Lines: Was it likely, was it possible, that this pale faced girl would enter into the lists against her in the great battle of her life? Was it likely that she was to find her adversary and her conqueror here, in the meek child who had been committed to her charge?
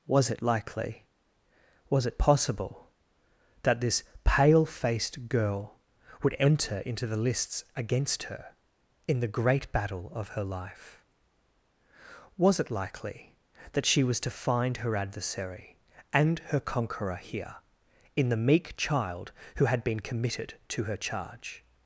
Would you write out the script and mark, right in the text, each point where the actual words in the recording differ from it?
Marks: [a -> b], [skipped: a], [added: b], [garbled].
Was it likely, was it possible, that this pale faced girl would enter into the lists against her in the great battle of her life? Was it likely that she was to find her adversary and her conqueror here, in the meek child who had been committed to her charge?